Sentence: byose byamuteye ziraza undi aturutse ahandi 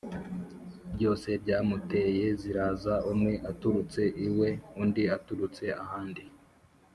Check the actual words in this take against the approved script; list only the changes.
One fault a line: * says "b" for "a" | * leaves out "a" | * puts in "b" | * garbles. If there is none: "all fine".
* puts in "umwe aturutse iwe"